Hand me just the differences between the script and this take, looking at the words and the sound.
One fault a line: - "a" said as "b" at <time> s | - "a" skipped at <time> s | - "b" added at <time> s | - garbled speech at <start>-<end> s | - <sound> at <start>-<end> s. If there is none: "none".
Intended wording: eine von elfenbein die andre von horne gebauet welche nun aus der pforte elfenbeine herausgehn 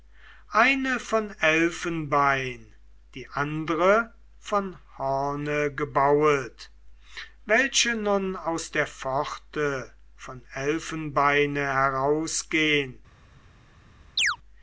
- "von" added at 10.2 s
- chirp at 14.2-14.4 s